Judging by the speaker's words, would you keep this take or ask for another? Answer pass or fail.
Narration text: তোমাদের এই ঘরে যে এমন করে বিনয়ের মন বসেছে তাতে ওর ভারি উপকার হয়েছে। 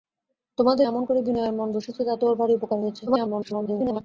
fail